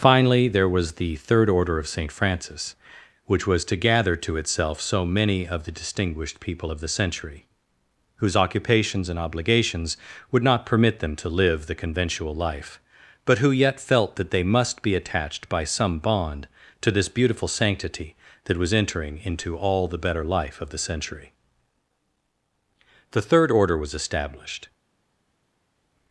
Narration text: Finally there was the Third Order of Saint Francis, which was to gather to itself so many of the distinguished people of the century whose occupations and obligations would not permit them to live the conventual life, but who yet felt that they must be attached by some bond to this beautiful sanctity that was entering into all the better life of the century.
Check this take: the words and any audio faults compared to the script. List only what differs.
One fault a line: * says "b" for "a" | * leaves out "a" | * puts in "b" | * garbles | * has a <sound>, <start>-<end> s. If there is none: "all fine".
* puts in "The Third Order was established"